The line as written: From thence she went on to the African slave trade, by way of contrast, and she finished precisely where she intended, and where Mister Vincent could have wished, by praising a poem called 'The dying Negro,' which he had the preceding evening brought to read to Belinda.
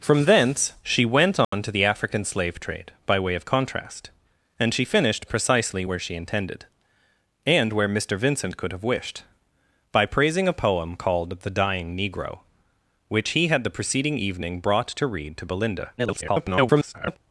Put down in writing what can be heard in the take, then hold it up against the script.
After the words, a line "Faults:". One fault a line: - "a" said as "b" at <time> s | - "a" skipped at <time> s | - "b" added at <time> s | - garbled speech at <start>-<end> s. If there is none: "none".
From thence she went on to the African slave trade, by way of contrast, and she finished precisely where she intended, and where Mister Vincent could have wished, by praising a poem called 'The dying Negro,' which he had the preceding evening brought to read to Belinda. [garbled]
Faults:
- garbled speech at 16.0-17.2 s